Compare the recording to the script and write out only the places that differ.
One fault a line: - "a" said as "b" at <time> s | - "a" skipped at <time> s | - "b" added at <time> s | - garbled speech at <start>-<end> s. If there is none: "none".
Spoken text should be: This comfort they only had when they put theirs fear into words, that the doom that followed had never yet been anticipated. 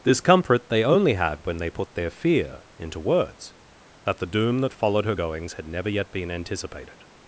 - "theirs" said as "their" at 1.9 s
- "her goings" added at 5.0 s